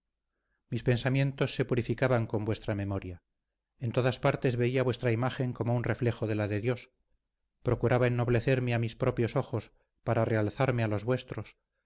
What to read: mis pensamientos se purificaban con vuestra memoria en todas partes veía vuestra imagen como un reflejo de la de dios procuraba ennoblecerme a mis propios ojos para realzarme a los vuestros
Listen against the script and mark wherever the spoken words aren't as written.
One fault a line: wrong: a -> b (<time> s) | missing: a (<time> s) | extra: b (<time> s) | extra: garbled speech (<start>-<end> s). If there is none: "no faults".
no faults